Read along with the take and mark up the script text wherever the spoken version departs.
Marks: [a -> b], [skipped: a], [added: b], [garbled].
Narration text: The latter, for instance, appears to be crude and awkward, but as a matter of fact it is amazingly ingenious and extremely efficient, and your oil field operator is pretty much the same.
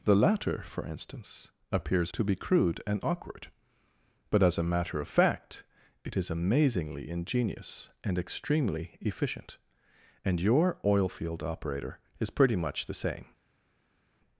The latter, for instance, appears to be crude and awkward, but as a matter of fact it is amazingly ingenious and extremely efficient, and your oil field operator is pretty much the same.